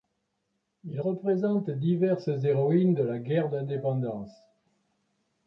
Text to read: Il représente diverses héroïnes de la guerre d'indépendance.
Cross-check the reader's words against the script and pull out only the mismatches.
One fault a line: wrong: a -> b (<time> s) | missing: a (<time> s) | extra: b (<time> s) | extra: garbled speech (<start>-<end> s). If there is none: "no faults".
no faults